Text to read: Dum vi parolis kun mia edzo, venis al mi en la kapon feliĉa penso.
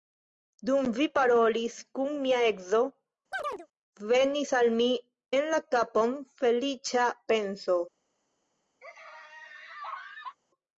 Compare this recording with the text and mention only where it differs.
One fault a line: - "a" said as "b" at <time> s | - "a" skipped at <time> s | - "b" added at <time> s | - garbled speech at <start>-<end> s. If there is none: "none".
none